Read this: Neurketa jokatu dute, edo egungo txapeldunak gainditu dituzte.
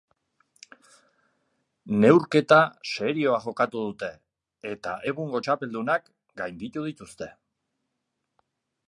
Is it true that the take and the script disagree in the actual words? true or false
true